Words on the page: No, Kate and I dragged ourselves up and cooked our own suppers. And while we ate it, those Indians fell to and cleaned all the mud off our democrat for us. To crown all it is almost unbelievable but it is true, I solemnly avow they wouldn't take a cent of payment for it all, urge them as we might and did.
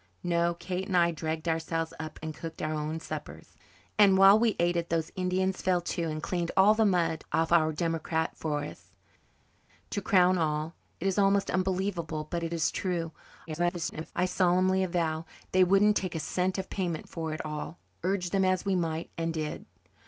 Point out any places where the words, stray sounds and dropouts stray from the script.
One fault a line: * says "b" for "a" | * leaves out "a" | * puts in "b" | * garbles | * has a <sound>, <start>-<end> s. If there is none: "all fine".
* garbles